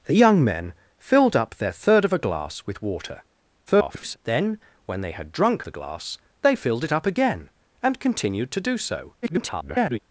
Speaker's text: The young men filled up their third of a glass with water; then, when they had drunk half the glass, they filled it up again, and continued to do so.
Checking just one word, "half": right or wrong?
wrong